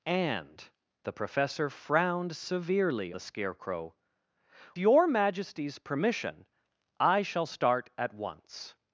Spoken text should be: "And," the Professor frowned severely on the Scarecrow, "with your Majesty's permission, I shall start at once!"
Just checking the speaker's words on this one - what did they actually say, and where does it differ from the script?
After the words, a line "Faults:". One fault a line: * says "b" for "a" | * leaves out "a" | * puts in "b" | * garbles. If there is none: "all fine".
"And," the Professor frowned severely the Scarecrow, "your Majesty's permission, I shall start at once!"
Faults:
* leaves out "on"
* leaves out "with"